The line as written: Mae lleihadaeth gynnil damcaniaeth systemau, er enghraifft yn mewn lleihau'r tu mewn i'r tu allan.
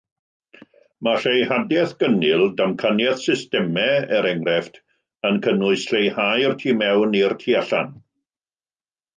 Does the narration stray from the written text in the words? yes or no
yes